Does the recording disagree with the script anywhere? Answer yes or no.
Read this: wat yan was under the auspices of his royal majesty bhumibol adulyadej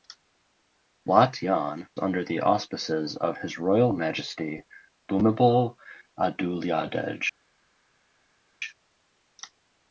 yes